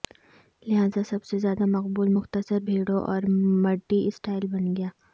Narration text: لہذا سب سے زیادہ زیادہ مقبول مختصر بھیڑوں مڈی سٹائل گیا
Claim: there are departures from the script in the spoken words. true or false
true